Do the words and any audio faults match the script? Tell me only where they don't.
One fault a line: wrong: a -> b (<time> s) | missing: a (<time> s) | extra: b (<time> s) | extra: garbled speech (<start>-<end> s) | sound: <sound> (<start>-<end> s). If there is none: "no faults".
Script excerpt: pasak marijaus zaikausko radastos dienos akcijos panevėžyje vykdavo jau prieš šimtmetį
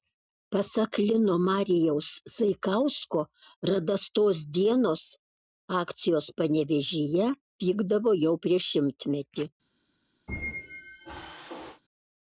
extra: lino (1.1 s)
sound: squeak (10.3-11.8 s)